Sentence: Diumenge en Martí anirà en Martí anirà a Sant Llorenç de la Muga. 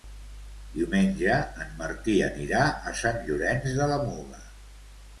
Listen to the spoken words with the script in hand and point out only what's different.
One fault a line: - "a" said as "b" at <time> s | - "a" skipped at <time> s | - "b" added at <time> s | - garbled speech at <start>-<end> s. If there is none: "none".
- "en Martí anirà" skipped at 2.6 s